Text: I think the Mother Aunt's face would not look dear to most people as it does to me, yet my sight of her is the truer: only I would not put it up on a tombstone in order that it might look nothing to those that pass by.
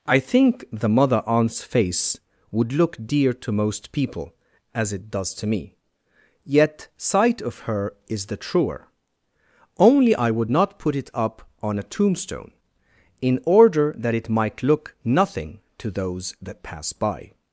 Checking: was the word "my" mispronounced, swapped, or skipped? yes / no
yes